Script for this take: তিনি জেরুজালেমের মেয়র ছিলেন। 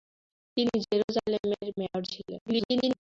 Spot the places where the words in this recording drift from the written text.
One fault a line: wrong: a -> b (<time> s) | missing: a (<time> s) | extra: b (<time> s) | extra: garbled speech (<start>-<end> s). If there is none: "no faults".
extra: garbled speech (2.5-3.0 s)